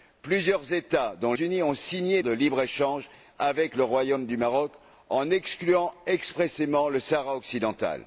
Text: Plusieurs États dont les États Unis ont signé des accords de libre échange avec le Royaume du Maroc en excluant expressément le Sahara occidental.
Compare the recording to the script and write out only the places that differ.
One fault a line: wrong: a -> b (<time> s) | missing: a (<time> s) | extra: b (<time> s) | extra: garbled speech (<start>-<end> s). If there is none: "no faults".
missing: les États (1.3 s)
missing: des accords (2.2 s)